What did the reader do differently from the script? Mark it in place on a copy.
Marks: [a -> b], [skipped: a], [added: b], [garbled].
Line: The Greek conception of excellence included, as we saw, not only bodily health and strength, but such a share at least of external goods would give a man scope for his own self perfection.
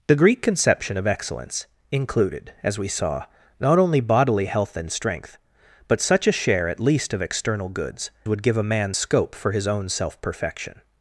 The Greek conception of excellence included, as we saw, not only bodily health and strength, but such a share at least of external goods would give a man scope for his own self perfection.